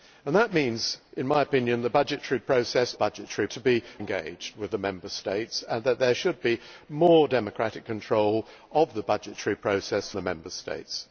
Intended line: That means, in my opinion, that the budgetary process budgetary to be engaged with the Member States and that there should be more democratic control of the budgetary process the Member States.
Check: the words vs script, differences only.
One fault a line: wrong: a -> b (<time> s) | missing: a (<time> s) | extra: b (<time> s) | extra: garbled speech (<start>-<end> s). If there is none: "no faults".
no faults